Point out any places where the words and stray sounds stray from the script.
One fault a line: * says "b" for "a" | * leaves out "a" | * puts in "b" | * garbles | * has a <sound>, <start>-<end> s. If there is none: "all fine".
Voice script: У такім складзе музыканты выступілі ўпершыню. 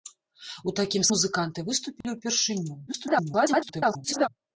* leaves out "складзе"
* has a dropout, 2.0-2.0 s
* garbles